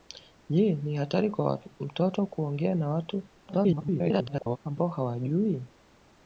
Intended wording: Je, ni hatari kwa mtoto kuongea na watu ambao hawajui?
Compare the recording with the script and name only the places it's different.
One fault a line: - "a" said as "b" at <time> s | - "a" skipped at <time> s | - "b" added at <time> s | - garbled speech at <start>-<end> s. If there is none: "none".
- garbled speech at 3.5-4.6 s